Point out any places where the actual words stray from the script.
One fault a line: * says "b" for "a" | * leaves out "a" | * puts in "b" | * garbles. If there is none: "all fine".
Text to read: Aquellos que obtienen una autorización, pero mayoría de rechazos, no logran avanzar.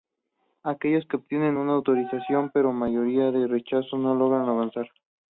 all fine